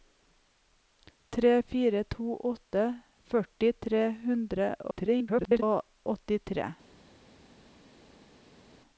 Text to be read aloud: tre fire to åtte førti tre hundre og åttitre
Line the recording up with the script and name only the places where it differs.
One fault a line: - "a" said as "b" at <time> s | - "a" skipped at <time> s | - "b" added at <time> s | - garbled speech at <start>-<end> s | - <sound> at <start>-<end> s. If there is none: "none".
- garbled speech at 4.9-5.6 s